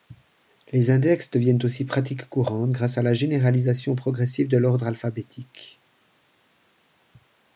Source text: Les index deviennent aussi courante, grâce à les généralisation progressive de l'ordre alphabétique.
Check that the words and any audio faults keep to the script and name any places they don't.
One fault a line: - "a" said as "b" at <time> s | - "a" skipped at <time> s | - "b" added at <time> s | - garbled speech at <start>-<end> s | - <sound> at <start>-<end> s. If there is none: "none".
- "pratique" added at 1.9 s
- "les" said as "la" at 3.0 s